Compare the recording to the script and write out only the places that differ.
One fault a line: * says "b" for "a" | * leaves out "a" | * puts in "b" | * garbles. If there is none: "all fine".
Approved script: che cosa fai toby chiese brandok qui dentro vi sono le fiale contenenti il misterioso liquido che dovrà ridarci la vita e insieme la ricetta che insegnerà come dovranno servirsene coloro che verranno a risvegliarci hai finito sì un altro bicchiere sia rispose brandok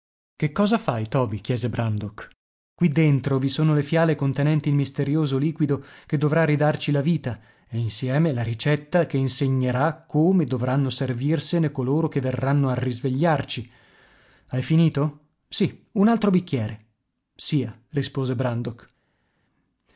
all fine